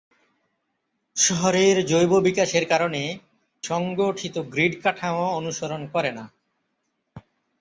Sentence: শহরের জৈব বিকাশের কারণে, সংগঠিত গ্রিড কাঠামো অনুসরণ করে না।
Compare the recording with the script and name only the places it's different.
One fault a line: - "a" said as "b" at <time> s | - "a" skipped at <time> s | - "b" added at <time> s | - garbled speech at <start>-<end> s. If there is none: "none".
none